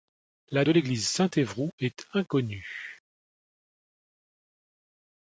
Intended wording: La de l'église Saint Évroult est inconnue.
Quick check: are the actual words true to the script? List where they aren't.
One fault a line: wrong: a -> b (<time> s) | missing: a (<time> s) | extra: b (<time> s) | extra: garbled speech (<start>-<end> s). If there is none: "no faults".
no faults